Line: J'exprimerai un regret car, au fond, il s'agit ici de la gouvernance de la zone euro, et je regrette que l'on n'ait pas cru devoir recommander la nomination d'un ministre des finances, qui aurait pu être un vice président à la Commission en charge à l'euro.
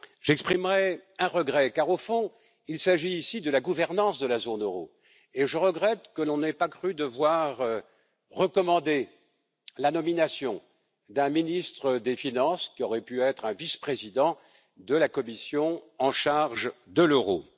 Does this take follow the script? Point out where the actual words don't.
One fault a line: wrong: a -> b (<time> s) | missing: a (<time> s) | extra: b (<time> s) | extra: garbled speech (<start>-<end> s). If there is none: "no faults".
wrong: à -> de (14.8 s)
wrong: à -> de (16.9 s)